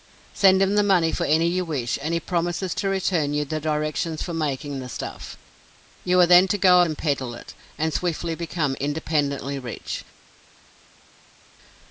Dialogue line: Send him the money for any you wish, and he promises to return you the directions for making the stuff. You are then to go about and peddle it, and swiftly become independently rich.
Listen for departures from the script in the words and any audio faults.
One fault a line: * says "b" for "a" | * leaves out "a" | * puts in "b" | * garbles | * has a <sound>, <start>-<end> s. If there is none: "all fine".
* leaves out "about"